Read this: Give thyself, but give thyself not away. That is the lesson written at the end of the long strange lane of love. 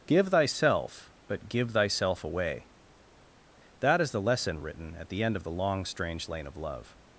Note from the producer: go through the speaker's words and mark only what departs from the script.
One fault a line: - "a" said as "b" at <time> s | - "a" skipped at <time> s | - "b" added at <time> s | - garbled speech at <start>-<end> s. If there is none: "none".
- "not" skipped at 2.2 s